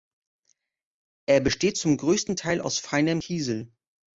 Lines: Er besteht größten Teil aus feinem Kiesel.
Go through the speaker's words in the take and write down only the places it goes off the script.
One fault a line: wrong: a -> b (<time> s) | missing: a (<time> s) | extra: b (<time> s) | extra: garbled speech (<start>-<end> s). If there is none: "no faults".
extra: zum (1.8 s)